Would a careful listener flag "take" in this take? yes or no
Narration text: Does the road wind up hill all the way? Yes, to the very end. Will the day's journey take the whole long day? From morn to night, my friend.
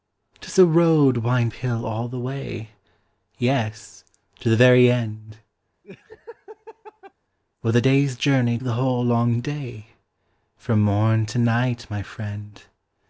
yes